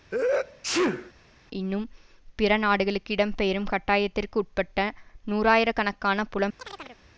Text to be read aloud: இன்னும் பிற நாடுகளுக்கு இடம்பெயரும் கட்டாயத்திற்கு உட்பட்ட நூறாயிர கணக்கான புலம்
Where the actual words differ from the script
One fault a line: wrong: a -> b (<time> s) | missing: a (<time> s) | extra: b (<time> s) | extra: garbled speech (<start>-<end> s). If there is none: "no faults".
no faults